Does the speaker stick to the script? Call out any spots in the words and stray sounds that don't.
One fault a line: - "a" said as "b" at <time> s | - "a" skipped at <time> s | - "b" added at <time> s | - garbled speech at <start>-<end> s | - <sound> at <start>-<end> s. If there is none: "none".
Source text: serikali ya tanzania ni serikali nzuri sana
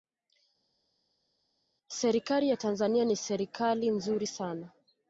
none